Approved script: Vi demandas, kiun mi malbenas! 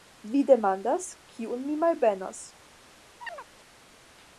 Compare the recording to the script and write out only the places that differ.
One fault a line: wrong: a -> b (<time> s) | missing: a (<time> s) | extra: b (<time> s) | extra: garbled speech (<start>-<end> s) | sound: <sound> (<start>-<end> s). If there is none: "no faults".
sound: chirp (3.2-3.5 s)